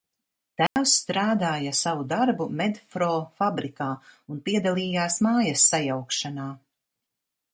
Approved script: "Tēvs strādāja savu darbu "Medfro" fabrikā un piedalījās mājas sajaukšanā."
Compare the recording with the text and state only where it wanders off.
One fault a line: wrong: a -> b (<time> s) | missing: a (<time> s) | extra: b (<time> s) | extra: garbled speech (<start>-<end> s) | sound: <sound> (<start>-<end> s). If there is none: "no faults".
sound: dropout (0.7-0.8 s)